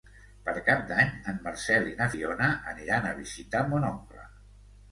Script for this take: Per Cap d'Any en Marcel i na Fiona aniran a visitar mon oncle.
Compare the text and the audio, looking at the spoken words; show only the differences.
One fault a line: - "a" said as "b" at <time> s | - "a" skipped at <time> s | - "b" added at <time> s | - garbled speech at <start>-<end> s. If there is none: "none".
none